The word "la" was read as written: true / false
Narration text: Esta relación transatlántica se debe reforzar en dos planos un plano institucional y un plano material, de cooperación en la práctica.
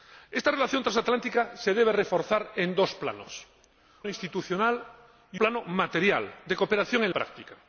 false